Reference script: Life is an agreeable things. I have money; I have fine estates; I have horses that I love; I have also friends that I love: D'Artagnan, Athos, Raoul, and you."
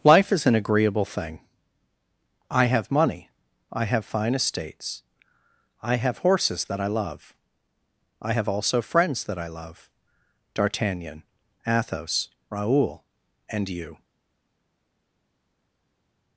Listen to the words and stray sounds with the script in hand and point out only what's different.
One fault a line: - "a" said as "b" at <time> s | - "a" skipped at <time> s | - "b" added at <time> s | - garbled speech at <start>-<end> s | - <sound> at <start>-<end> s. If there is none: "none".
- "things" said as "thing" at 1.1 s